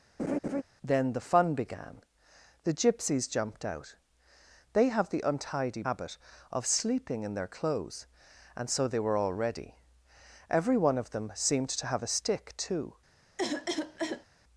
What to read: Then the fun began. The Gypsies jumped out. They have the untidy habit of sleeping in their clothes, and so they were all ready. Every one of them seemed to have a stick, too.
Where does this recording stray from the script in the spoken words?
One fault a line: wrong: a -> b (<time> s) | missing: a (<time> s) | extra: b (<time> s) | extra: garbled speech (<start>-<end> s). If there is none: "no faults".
no faults